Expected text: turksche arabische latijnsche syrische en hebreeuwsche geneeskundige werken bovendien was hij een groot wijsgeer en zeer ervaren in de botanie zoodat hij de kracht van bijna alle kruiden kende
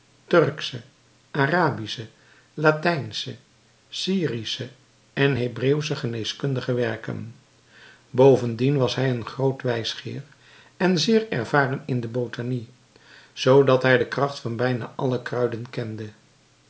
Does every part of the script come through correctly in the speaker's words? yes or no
yes